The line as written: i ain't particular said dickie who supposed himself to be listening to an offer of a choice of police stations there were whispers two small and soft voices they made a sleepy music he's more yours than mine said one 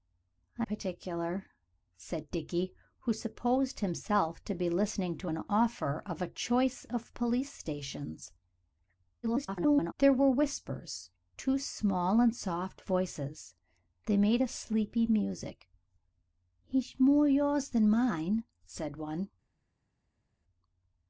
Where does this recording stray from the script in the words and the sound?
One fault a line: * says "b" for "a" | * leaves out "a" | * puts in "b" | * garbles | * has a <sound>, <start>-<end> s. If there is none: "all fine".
* leaves out "ain't"
* garbles